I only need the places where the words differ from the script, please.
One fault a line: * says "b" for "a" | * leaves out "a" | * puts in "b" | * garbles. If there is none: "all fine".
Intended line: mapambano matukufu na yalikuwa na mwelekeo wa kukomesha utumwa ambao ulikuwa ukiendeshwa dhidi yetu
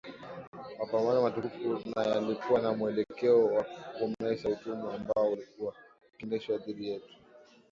all fine